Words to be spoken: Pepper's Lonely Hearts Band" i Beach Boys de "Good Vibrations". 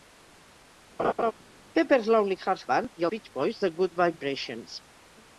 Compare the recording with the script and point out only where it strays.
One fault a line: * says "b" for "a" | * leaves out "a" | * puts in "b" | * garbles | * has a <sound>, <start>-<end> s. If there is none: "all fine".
* has a laugh, 1.0-1.3 s